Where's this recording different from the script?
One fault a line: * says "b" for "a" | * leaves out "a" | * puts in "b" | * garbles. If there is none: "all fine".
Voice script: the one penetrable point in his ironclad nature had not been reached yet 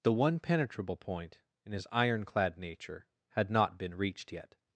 all fine